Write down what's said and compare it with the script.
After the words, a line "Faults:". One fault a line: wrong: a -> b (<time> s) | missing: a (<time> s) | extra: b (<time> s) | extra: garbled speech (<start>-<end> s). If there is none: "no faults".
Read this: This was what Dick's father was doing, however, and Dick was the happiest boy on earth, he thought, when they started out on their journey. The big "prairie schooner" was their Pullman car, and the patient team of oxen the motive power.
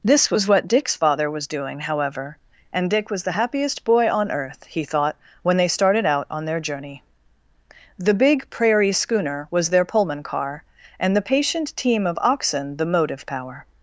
This was what Dick's father was doing, however, and Dick was the happiest boy on earth, he thought, when they started out on their journey. The big "prairie schooner" was their Pullman car, and the patient team of oxen the motive power.
Faults:
no faults